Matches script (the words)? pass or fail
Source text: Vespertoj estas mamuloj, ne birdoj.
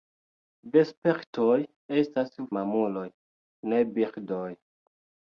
pass